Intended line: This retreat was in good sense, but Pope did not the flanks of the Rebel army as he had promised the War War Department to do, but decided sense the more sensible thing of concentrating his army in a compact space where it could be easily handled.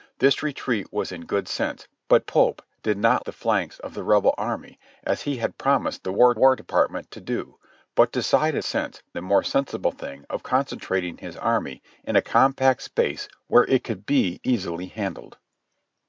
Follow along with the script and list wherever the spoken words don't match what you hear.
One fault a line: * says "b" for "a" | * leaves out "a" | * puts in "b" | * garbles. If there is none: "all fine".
all fine